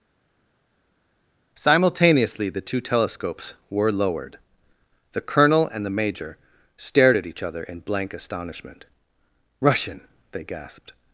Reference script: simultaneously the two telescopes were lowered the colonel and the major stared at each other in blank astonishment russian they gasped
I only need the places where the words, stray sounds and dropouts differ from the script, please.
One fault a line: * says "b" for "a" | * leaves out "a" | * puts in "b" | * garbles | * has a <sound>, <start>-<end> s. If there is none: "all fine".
all fine